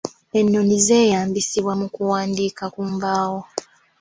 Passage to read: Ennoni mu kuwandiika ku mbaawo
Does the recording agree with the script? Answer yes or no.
no